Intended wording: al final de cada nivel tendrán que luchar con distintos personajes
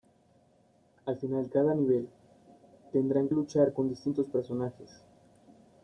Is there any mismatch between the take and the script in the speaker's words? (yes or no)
yes